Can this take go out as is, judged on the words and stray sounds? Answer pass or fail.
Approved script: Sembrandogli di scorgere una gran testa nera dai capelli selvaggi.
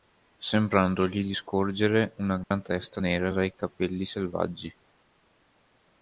fail